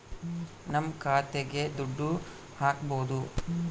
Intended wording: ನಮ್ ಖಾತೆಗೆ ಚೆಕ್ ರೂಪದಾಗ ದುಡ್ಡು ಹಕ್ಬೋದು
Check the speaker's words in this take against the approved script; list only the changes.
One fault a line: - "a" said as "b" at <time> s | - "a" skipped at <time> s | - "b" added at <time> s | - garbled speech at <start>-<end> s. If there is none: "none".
- "ಚೆಕ್ ರೂಪದಾಗ" skipped at 1.6 s